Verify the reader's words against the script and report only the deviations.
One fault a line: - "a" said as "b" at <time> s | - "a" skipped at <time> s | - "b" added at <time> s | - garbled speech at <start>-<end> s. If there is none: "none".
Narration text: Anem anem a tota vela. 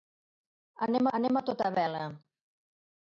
none